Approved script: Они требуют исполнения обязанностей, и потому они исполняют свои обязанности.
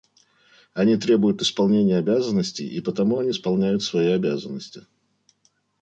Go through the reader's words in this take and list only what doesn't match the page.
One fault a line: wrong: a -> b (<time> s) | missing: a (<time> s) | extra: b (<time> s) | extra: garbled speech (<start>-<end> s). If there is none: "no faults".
no faults